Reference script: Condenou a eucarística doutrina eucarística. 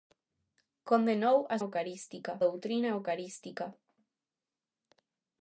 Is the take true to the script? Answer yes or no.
yes